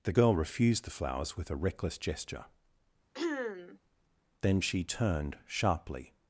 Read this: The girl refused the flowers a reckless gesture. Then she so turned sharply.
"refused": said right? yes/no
yes